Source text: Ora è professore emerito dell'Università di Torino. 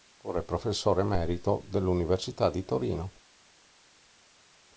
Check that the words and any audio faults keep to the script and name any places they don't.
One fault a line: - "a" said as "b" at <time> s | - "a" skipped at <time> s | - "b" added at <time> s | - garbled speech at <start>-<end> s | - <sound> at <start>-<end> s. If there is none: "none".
none